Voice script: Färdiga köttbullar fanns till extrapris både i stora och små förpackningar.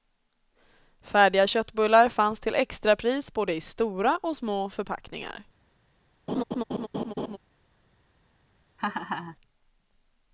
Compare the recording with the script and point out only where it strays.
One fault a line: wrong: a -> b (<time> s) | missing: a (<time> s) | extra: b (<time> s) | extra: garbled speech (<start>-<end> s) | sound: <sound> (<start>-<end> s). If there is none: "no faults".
sound: laugh (6.3-7.4 s)
sound: laugh (8.8-9.4 s)